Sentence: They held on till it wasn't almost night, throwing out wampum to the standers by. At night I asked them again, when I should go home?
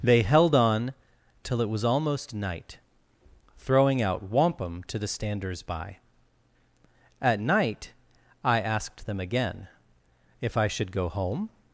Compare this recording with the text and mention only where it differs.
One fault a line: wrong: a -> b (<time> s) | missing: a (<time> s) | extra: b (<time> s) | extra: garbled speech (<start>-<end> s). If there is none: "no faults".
wrong: wasn't -> was (1.7 s)
wrong: when -> if (10.4 s)